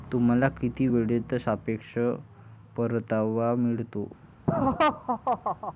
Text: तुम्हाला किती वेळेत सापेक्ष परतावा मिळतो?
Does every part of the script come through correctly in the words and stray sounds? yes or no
no